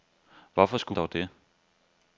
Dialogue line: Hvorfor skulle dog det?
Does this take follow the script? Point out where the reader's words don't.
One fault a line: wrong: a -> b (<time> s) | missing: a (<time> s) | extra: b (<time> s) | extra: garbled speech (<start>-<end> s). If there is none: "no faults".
no faults